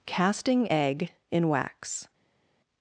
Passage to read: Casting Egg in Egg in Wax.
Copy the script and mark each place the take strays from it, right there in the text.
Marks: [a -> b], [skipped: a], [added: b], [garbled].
Casting Egg in [skipped: Egg in] Wax.